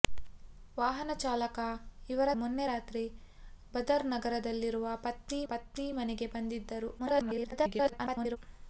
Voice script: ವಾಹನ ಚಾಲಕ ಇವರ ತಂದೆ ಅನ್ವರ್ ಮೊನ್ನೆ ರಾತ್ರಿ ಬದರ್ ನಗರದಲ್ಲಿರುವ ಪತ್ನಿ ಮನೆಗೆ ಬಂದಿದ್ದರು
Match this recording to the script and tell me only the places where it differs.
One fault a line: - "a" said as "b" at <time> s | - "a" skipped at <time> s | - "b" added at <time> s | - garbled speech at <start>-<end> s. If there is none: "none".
- "ತಂದೆ ಅನ್ವರ್" skipped at 2.3 s
- "ಪತ್ನಿ" added at 5.5 s
- garbled speech at 7.0-8.4 s